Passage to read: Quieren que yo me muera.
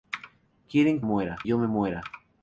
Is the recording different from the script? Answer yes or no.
yes